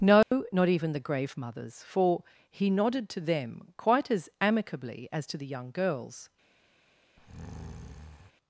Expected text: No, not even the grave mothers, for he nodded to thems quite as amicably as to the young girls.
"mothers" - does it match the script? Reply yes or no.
yes